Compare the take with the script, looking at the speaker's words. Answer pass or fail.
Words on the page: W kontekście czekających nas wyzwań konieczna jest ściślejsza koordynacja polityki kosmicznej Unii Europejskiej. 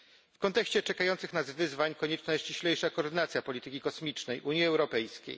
pass